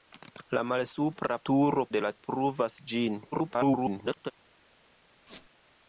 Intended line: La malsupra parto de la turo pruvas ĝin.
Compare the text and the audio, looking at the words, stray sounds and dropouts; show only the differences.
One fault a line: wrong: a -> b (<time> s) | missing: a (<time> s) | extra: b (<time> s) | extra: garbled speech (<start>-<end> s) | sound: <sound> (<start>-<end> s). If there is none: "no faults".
wrong: parto -> turo (1.5 s)
missing: turo (2.1 s)
extra: garbled speech (3.3-4.3 s)
sound: squeak (5.3-5.5 s)